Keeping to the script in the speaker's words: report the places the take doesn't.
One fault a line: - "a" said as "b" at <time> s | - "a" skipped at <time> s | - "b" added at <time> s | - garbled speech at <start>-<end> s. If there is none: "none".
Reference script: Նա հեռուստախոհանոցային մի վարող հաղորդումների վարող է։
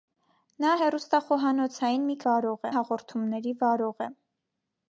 none